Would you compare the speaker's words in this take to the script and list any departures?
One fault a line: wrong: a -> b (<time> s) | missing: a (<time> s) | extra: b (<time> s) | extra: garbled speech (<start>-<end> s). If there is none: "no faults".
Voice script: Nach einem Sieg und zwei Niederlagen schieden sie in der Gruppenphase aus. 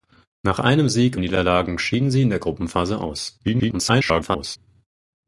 missing: und zwei (1.1 s)
extra: garbled speech (3.4-4.6 s)